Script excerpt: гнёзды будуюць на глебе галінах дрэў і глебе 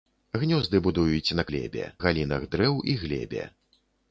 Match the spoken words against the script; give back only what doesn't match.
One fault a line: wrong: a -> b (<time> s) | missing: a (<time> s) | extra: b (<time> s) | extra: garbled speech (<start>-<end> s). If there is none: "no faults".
no faults